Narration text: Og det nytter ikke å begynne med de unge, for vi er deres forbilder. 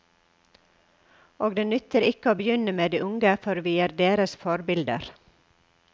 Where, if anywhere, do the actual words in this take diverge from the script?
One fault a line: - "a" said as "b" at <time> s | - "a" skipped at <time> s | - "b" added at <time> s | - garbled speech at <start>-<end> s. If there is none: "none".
none